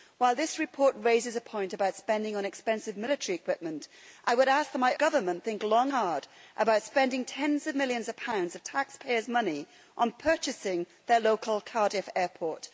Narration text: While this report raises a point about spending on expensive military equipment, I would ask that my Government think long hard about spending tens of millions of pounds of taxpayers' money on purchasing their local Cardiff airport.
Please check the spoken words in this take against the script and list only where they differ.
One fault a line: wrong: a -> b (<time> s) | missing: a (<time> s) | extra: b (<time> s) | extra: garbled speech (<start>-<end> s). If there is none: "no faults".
no faults